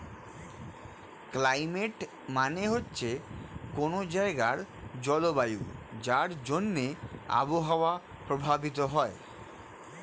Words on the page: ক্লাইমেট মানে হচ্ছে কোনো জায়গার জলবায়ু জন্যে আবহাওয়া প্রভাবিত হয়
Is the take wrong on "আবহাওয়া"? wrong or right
right